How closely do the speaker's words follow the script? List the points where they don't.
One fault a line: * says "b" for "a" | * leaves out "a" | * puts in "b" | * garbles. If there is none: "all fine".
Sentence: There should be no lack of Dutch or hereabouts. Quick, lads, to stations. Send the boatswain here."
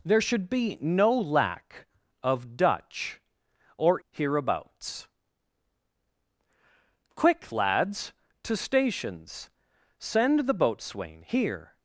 all fine